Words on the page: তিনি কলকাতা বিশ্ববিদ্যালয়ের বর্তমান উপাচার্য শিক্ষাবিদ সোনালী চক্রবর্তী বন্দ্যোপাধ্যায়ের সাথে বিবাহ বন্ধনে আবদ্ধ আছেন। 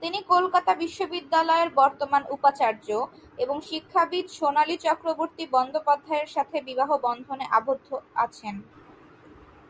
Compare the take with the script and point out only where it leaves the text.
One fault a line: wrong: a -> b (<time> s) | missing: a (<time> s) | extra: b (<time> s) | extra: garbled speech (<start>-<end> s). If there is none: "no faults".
extra: এবং (3.4 s)